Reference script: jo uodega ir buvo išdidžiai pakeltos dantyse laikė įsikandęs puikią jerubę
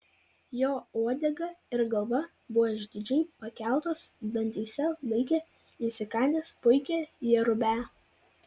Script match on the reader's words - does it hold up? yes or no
no